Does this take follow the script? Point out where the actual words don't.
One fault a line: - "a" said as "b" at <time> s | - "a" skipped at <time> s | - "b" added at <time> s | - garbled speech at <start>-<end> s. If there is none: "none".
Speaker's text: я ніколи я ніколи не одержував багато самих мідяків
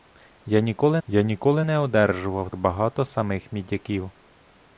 none